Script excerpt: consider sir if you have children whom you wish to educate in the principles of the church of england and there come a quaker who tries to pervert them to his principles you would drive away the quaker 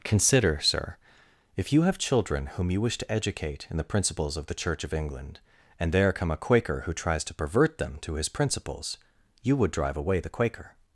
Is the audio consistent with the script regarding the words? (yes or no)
yes